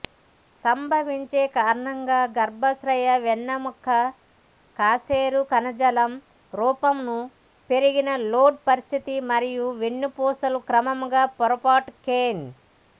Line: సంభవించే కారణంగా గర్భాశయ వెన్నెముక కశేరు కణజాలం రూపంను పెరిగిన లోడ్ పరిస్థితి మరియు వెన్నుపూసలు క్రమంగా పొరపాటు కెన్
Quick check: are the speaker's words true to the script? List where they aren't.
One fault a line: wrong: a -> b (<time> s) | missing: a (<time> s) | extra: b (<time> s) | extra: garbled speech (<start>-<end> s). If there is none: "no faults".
no faults